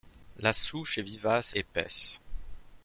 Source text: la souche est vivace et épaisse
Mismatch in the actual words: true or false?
true